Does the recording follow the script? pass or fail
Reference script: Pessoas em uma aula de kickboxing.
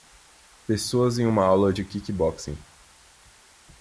pass